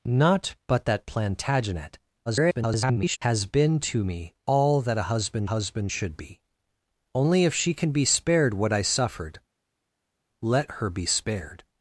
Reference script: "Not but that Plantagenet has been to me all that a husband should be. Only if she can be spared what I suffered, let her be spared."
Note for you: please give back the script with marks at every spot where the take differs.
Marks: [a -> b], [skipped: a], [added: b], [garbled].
"Not but that Plantagenet [garbled] has been to me all that a husband [added: husband] should be. Only if she can be spared what I suffered, let her be spared."